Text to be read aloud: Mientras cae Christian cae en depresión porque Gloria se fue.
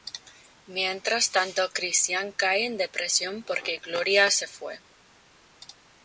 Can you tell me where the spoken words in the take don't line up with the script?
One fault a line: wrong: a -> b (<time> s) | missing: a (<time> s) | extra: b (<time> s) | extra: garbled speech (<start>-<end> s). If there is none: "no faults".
wrong: cae -> tanto (1.3 s)